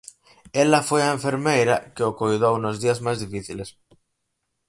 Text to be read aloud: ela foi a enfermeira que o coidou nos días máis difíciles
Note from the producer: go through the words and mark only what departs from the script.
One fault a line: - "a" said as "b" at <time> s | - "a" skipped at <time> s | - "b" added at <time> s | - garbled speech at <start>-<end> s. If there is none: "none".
none